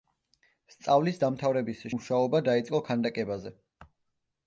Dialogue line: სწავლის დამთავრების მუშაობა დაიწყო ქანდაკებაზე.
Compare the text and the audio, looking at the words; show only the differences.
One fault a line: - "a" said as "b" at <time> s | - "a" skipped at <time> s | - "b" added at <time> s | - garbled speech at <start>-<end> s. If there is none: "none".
none